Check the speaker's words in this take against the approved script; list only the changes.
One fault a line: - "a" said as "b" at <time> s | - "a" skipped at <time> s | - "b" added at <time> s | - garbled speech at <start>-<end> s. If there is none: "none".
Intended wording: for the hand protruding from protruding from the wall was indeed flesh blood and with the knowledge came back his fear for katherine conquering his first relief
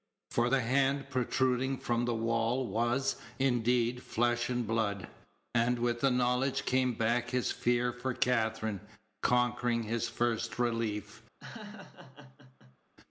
- "protruding from" skipped at 2.0 s
- "and" added at 4.5 s